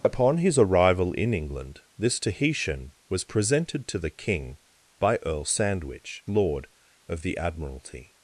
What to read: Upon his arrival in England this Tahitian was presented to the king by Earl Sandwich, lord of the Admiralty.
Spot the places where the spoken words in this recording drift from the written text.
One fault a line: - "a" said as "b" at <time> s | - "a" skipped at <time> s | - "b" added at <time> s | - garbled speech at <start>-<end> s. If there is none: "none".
none